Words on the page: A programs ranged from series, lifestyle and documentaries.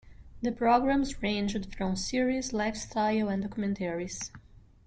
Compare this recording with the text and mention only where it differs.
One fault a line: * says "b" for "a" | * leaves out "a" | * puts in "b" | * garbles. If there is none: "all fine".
* says "The" for "A"